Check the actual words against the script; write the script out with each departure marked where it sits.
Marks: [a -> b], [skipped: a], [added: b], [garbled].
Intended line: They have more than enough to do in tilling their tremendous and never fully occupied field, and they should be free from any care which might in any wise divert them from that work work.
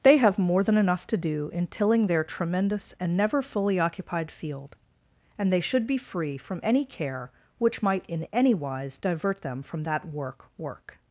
They have more than enough to do in tilling their tremendous and never fully occupied field, and they should be free from any care which might in any wise divert them from that work work.